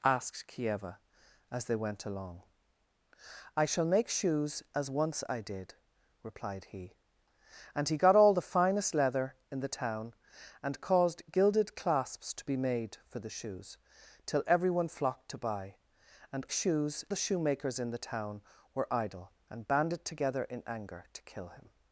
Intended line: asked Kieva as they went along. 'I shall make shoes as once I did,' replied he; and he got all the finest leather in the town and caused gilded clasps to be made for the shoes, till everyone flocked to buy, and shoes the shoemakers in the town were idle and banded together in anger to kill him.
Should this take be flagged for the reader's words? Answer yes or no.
no